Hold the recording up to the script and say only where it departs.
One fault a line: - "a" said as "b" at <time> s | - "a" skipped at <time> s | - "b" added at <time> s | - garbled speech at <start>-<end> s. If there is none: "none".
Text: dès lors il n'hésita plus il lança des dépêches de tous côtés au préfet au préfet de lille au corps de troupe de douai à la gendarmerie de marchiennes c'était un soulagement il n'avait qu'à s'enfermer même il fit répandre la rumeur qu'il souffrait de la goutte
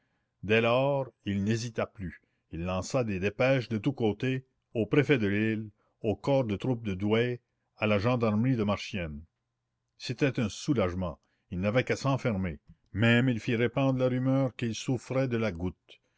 - "au préfet" skipped at 5.2 s